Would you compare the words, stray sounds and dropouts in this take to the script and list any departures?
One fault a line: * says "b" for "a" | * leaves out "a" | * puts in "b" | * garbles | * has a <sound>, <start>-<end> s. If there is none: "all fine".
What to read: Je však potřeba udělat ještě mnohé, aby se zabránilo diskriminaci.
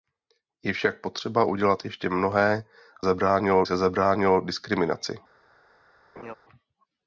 * says "zabránilo" for "aby"
* has a laugh, 6.2-6.3 s